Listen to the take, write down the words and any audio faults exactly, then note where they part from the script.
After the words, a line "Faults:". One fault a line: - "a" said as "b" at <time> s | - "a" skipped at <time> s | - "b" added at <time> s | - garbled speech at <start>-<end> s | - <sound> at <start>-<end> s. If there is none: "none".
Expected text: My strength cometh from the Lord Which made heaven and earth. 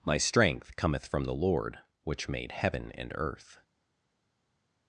My strength cometh from the Lord Which made heaven and earth.
Faults:
none